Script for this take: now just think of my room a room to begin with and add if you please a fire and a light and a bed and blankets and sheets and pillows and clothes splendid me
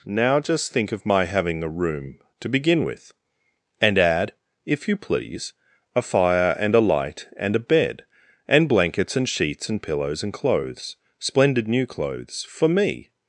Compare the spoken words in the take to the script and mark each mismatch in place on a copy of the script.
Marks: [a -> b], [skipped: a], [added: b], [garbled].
now just think of my [room -> having] a room to begin with and add if you please a fire and a light and a bed and blankets and sheets and pillows and clothes splendid [added: new clothes for] me